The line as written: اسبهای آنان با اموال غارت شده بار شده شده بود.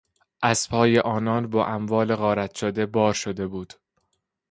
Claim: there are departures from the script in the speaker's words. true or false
true